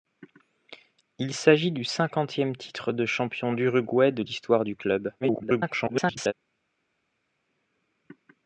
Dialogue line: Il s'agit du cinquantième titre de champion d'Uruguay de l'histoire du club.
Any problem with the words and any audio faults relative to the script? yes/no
yes